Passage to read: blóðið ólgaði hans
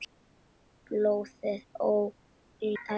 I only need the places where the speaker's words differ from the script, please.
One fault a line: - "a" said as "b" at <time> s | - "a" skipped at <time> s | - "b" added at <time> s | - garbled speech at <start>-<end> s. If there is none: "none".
none